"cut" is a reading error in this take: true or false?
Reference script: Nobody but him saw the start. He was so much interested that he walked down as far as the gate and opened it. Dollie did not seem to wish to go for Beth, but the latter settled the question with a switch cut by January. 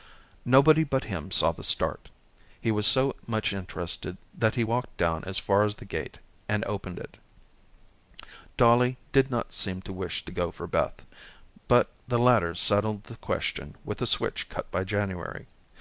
false